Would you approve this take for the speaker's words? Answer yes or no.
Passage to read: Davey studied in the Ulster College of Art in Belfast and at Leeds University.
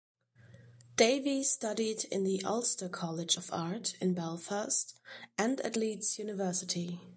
yes